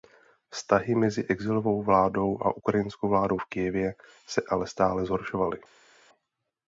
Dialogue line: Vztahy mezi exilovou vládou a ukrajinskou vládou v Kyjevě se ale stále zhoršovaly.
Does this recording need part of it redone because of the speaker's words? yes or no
no